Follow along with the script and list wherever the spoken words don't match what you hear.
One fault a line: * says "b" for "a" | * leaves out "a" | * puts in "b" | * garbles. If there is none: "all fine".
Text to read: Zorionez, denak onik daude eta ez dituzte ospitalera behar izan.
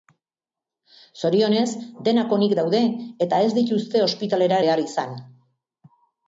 all fine